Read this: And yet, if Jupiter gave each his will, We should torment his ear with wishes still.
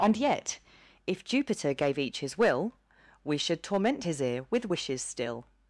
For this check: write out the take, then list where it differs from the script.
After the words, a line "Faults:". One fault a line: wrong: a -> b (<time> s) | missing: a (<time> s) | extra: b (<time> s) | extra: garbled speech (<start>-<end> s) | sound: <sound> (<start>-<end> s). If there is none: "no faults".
And yet, if Jupiter gave each his will, We should torment his ear with wishes still.
Faults:
no faults